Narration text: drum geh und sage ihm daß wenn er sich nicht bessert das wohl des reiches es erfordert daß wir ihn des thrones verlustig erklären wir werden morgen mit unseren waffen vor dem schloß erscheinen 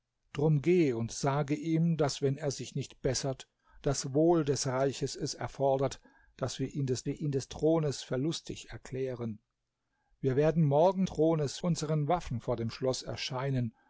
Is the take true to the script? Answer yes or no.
no